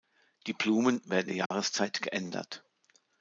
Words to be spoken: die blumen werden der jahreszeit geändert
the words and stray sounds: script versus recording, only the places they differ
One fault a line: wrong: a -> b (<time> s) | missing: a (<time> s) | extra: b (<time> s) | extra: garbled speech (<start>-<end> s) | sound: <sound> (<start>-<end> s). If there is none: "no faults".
sound: dropout (1.5-1.5 s)